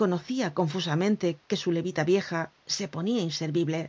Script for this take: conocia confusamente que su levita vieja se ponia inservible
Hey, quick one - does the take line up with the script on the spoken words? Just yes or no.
yes